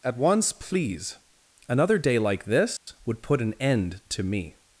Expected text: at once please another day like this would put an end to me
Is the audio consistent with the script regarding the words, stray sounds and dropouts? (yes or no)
no